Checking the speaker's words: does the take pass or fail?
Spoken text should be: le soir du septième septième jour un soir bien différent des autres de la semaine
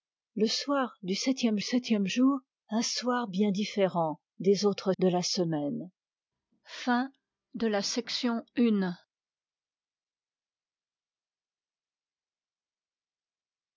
pass